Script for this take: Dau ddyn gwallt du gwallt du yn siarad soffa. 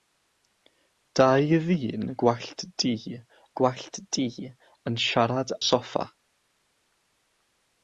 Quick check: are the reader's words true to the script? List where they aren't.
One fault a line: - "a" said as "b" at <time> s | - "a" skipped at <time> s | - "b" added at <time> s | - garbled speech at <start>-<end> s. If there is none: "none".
none